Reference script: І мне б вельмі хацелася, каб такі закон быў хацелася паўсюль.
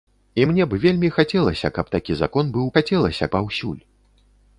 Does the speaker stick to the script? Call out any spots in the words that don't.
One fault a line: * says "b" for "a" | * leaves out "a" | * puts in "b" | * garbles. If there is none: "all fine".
all fine